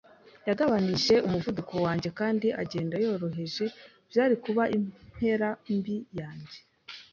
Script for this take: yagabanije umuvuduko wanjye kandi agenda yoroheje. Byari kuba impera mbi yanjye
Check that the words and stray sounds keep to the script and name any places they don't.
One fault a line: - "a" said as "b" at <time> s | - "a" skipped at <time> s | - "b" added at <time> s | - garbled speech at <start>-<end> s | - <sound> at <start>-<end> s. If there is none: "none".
none